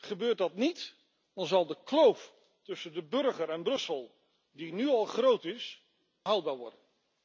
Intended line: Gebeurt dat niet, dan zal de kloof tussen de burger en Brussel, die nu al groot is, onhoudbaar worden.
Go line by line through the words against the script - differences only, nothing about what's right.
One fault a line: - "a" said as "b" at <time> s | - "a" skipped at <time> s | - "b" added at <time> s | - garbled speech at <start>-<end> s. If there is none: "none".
none